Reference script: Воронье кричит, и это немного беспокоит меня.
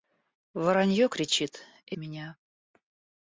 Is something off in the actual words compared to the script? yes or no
yes